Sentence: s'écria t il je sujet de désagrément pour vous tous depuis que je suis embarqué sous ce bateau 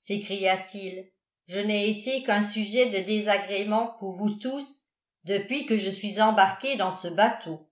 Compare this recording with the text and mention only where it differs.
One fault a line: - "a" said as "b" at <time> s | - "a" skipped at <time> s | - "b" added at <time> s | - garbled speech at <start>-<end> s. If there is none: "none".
- "n'ai été qu'un" added at 1.6 s
- "sous" said as "dans" at 6.8 s